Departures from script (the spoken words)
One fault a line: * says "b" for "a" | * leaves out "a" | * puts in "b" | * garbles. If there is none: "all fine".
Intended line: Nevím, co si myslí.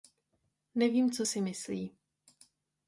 all fine